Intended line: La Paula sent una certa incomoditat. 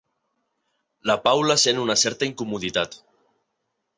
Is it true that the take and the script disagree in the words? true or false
false